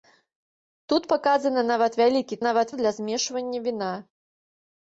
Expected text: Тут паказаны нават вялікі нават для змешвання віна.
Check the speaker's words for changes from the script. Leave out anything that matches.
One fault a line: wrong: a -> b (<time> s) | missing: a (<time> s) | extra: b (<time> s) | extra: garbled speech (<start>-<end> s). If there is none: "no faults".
no faults